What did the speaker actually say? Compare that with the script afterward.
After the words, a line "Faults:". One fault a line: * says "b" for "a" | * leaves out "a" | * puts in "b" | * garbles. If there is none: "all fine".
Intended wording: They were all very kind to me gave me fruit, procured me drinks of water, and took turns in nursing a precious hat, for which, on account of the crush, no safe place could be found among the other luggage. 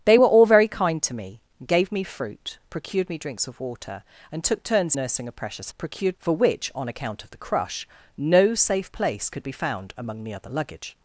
They were all very kind to me gave me fruit, procured me drinks of water, and took turns nursing a precious procured, for which, on account of the crush, no safe place could be found among the other luggage.
Faults:
* leaves out "in"
* says "procured" for "hat"